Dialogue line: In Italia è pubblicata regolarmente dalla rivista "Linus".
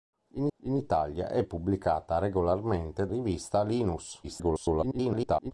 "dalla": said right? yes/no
no